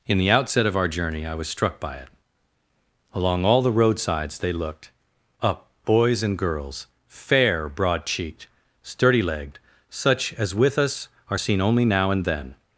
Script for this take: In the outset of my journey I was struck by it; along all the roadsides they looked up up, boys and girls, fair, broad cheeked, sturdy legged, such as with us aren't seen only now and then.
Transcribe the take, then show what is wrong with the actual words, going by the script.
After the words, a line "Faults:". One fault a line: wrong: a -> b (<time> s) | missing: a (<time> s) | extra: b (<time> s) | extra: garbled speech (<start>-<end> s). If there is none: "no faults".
In the outset of our journey I was struck by it; along all the roadsides they looked up, boys and girls, fair, broad cheeked, sturdy legged, such as with us are seen only now and then.
Faults:
wrong: my -> our (0.8 s)
missing: up (5.7 s)
wrong: aren't -> are (11.3 s)